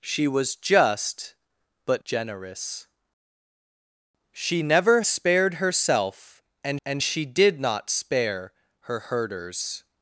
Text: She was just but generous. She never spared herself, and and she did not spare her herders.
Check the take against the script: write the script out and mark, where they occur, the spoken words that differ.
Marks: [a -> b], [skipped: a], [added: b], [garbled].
She was just but generous. She never spared herself, and and she did not spare her herders.